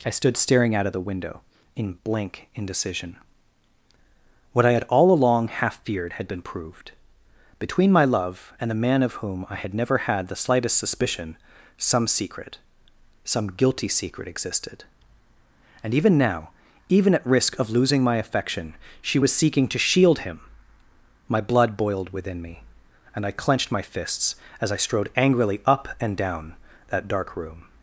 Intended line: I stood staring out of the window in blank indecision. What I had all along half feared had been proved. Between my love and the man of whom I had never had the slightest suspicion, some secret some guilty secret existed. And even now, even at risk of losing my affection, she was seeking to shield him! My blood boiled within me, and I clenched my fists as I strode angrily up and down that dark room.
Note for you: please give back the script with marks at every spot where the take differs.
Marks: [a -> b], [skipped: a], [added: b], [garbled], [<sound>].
I stood staring out of the window in blank indecision. What I had all along half feared had been proved. Between my love and the man of whom I had never had the slightest suspicion, some secret some guilty secret existed. And even now, even at risk of losing my affection, she was seeking to shield him! My blood boiled within me, and I clenched my fists as I strode angrily up and down that dark room.